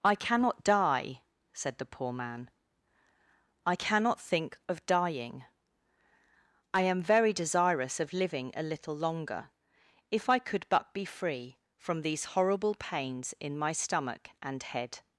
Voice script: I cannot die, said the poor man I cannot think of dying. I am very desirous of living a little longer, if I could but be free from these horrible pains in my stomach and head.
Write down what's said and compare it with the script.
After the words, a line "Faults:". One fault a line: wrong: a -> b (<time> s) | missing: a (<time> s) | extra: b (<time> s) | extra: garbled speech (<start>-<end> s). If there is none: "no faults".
I cannot die, said the poor man I cannot think of dying. I am very desirous of living a little longer, if I could but be free from these horrible pains in my stomach and head.
Faults:
no faults